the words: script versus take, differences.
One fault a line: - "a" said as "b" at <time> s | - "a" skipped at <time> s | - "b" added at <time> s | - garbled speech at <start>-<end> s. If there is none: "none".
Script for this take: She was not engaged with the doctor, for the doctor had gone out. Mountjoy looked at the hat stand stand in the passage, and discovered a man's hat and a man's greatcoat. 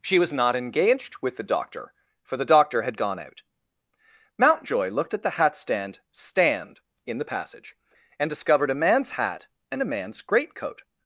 none